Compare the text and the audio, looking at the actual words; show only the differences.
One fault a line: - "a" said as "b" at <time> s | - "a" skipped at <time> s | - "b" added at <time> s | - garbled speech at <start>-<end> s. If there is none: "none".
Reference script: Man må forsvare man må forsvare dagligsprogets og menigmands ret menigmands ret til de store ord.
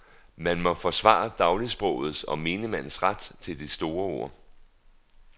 - "man må forsvare" skipped at 1.3 s
- "menigmands ret" skipped at 3.3 s